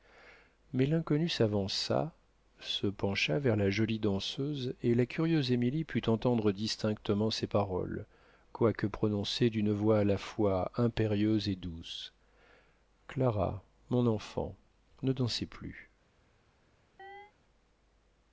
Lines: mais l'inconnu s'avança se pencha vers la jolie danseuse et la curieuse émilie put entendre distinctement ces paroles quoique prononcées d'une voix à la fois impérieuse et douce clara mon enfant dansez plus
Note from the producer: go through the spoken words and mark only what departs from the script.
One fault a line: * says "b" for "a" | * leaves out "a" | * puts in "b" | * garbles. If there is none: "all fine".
* puts in "ne"